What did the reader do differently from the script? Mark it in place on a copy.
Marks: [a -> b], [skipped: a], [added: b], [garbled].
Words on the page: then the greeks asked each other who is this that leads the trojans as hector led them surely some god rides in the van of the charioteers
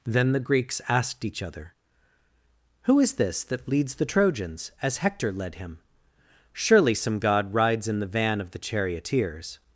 then the greeks asked each other who is this that leads the trojans as hector led [them -> him] surely some god rides in the van of the charioteers